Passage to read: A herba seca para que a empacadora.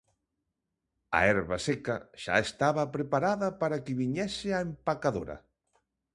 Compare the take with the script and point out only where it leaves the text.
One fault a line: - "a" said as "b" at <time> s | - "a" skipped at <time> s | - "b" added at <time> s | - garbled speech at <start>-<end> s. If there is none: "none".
- "xa estaba preparada" added at 2.2 s
- "viñese" added at 4.0 s